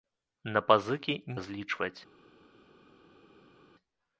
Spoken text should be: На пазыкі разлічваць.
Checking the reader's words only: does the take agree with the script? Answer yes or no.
yes